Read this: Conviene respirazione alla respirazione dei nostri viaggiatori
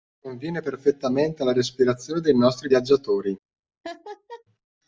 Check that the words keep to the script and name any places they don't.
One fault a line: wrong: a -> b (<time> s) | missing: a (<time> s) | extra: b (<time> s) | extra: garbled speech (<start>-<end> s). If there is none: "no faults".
wrong: respirazione -> perfettamente (0.6 s)